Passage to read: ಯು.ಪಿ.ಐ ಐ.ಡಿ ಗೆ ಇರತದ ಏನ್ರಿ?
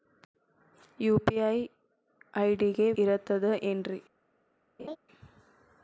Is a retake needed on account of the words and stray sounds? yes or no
yes